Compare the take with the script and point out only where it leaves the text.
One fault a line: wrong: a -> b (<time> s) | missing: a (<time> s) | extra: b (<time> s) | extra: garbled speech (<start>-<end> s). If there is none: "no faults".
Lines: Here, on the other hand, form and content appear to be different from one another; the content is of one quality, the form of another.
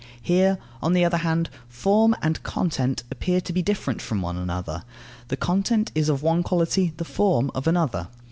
no faults